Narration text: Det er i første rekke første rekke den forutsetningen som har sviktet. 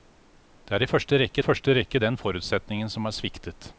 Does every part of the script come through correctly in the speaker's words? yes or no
yes